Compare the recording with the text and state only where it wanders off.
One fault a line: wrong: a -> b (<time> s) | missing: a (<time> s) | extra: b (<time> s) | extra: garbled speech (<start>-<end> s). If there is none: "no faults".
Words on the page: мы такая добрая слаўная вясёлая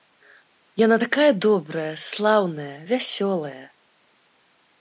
wrong: мы -> яна (0.8 s)